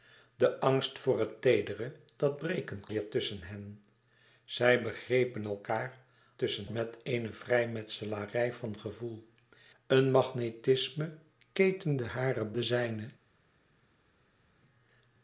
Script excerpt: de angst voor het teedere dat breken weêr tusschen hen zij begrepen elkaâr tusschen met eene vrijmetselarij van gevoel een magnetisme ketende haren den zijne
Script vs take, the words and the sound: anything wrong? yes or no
no